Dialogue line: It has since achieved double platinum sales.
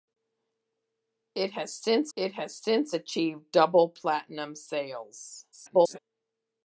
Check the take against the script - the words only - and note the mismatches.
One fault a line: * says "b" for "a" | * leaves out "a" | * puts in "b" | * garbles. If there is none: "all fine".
* puts in "it has since"
* garbles